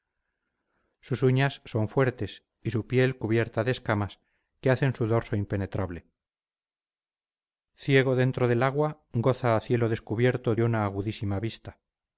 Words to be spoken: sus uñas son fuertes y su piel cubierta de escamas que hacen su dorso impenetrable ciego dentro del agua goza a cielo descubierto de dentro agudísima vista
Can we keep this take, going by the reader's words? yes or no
no